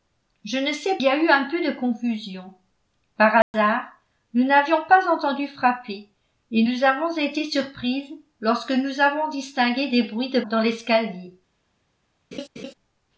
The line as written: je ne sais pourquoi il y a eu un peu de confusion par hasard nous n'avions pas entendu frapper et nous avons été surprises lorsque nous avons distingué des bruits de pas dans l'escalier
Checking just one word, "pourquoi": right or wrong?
wrong